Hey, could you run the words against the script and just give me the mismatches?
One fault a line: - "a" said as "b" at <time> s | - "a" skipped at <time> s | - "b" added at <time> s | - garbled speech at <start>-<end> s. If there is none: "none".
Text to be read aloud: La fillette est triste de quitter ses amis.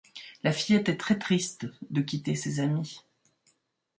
- "très" added at 1.0 s